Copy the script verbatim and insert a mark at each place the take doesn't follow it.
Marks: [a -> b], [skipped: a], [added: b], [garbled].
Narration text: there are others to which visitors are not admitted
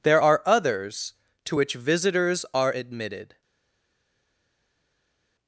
there are others to which visitors are [skipped: not] admitted